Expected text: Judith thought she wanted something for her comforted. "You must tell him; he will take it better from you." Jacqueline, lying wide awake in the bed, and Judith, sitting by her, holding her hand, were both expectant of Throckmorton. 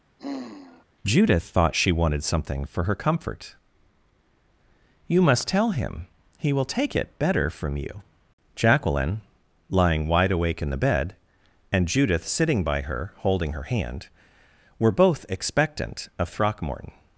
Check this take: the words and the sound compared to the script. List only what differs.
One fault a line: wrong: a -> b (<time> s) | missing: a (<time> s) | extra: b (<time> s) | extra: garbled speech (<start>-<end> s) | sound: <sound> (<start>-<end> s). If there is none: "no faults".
sound: sigh (0.2-0.9 s)
wrong: comforted -> comfort (2.9 s)